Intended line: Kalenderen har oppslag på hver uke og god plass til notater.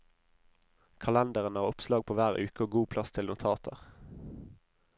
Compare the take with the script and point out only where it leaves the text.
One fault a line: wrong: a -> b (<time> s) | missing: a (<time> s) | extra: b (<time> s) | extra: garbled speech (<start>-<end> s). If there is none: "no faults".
no faults